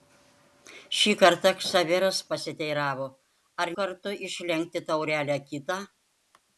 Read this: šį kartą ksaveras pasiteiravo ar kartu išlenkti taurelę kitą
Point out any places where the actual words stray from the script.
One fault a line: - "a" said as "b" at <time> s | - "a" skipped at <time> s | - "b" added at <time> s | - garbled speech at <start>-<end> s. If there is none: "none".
none